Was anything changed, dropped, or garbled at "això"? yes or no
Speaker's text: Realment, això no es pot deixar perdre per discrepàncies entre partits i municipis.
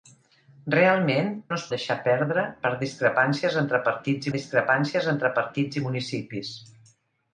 yes